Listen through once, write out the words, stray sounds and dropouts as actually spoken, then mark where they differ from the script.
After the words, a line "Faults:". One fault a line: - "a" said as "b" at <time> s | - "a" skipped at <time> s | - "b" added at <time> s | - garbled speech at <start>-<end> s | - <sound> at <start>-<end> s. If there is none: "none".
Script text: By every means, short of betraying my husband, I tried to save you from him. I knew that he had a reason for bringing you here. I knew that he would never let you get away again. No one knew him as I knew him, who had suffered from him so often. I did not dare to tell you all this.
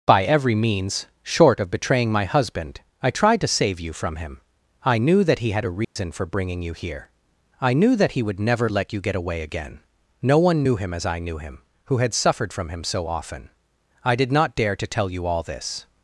By every means, short of betraying my husband, I tried to save you from him. I knew that he had a reason for bringing you here. I knew that he would never let you get away again. No one knew him as I knew him, who had suffered from him so often. I did not dare to tell you all this.
Faults:
- dropout at 5.8-6.0 s